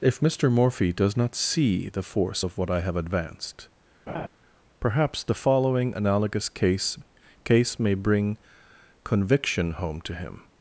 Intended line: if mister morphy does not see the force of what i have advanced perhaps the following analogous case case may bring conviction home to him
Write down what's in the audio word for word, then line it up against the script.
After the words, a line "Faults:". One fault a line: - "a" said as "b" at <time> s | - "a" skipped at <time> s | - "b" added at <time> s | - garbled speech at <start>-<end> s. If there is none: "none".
if mister morphy does not see the force of what i have advanced perhaps the following analogous case case may bring conviction home to him
Faults:
none